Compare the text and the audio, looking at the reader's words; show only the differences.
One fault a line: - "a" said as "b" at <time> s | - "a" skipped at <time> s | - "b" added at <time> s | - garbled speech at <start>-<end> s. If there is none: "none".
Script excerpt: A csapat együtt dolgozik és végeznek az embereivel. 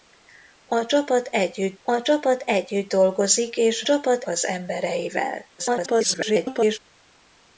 - "a csapat együtt" added at 1.8 s
- "végeznek" said as "csapat" at 3.8 s
- garbled speech at 5.6-6.8 s